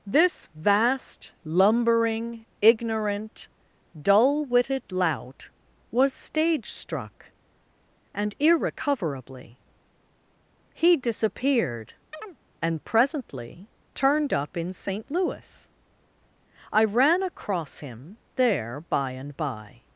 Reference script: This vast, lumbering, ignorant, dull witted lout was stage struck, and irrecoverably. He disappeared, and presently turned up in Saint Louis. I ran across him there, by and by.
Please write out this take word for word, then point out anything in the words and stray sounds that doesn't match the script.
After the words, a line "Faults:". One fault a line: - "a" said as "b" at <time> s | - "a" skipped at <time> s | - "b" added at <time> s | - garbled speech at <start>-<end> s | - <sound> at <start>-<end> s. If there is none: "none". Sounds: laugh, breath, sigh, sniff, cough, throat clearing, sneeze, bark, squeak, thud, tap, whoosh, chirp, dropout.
This vast, lumbering, ignorant, dull witted lout was stage struck, and irrecoverably. He disappeared, and presently turned up in Saint Louis. I ran across him there, by and by.
Faults:
- chirp at 12.1-12.4 s